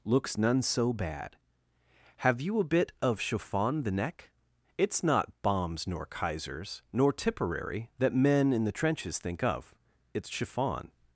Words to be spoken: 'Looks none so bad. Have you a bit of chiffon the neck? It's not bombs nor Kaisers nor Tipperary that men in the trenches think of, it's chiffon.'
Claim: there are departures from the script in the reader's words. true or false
false